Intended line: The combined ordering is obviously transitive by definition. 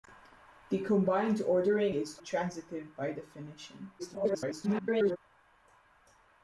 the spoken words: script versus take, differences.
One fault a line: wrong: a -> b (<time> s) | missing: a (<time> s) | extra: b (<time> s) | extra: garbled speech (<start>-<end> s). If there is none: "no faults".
missing: obviously (2.2 s)
extra: garbled speech (4.0-5.2 s)